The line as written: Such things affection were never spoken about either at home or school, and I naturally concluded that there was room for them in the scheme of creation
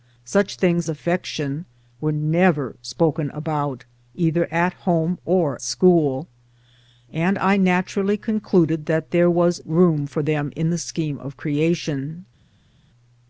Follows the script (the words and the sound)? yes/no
yes